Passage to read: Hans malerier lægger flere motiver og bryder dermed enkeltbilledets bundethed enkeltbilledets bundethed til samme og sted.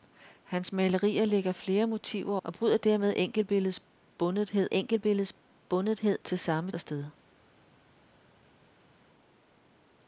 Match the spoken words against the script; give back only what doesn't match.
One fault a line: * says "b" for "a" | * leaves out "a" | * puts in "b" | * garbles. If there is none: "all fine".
all fine